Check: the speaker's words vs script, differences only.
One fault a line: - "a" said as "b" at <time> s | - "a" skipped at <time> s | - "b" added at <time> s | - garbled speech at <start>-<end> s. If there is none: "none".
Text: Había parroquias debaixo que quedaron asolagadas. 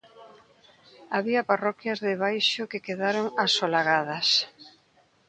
none